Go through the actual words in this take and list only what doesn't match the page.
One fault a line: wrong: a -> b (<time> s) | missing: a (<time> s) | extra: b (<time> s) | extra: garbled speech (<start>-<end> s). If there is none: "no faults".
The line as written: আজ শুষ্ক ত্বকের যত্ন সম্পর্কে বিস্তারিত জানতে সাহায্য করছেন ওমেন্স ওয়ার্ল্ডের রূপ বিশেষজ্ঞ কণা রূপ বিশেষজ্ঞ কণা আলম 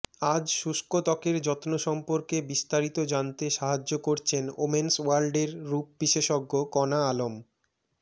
missing: রূপ বিশেষজ্ঞ কণা (7.0 s)